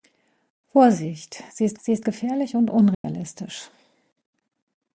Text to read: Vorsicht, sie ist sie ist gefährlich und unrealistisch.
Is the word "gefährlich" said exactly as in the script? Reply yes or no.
yes